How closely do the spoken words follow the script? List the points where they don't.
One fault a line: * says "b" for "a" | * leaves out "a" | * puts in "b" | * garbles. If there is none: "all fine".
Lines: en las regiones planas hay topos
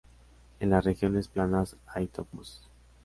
all fine